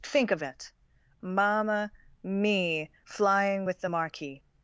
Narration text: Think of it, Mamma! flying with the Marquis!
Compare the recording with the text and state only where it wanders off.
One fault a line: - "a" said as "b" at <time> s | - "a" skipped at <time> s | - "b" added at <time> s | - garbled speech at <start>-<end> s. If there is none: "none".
- "me" added at 2.2 s